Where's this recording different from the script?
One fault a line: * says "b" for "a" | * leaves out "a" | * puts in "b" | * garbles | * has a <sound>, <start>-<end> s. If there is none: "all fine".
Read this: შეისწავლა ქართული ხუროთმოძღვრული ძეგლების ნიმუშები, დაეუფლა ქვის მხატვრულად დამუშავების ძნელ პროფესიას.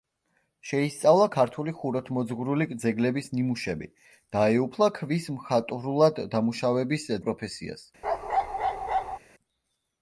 * leaves out "ძნელ"
* has a bark, 8.0-9.2 s